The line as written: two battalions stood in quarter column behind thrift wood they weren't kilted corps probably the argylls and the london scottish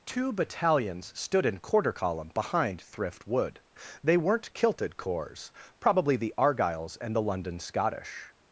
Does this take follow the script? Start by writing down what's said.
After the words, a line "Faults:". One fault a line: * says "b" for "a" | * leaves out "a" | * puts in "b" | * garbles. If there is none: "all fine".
two battalions stood in quarter column behind thrift wood they weren't kilted corps probably the argylls and the london scottish
Faults:
all fine